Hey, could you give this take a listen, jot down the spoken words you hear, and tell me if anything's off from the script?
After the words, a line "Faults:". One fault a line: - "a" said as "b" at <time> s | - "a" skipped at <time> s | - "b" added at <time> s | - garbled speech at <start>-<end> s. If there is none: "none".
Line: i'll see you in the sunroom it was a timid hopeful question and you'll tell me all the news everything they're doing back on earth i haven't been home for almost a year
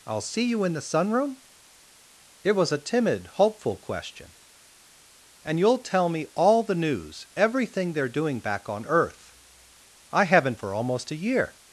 i'll see you in the sunroom it was a timid hopeful question and you'll tell me all the news everything they're doing back on earth i haven't for almost a year
Faults:
- "been home" skipped at 10.6 s